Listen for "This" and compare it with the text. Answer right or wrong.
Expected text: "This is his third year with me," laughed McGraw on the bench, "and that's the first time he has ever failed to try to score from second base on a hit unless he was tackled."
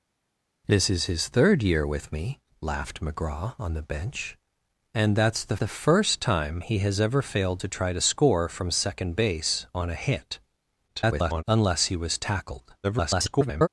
right